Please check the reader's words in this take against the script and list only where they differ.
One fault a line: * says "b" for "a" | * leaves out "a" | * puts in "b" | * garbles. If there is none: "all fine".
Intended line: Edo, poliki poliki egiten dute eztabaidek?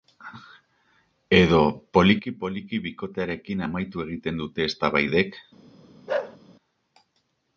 * puts in "bikotearekin amaitu"